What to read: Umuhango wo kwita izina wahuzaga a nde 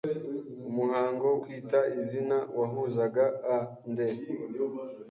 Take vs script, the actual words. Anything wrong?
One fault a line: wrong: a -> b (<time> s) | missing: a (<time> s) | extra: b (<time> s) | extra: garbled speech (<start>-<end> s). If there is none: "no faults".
missing: wo (1.3 s)